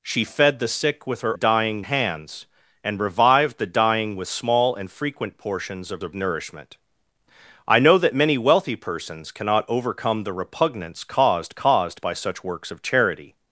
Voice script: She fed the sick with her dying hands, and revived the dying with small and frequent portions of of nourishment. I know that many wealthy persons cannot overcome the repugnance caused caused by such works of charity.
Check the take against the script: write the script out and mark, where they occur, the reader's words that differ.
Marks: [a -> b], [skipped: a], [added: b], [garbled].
She fed the sick with her dying hands, and revived the dying with small and frequent portions of of nourishment. I know that many wealthy persons cannot overcome the repugnance caused caused by such works of charity.